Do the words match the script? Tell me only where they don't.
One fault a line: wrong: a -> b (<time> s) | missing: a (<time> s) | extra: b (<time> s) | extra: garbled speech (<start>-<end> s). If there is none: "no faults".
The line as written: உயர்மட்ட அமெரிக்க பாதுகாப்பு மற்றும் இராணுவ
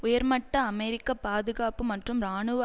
no faults